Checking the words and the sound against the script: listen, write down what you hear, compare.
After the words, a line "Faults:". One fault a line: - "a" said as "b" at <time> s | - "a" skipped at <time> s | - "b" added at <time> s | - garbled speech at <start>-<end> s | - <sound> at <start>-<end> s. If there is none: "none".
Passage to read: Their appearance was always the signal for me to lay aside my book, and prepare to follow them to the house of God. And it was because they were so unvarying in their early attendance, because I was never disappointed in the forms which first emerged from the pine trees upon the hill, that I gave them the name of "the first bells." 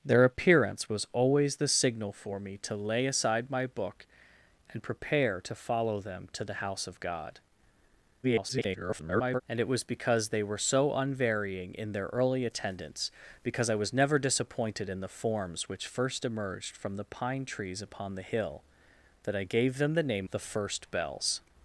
Their appearance was always the signal for me to lay aside my book, and prepare to follow them to the house of God. [garbled] And it was because they were so unvarying in their early attendance, because I was never disappointed in the forms which first emerged from the pine trees upon the hill, that I gave them the name "the first bells."
Faults:
- garbled speech at 8.2-9.4 s
- "of" skipped at 20.3 s